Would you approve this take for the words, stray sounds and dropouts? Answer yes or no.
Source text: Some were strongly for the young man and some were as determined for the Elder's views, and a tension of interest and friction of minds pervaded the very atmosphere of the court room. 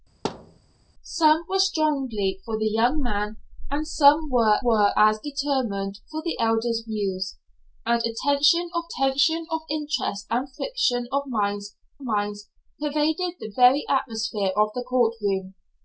no